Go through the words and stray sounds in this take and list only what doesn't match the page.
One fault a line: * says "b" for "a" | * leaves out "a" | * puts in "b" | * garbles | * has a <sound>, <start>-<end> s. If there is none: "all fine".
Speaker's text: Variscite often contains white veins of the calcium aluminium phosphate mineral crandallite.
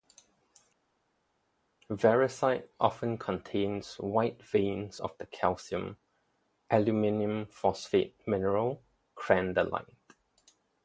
all fine